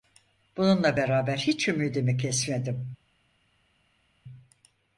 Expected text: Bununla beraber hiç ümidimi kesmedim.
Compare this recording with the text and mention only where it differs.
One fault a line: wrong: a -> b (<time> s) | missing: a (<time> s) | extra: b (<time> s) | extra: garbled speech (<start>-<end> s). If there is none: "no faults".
no faults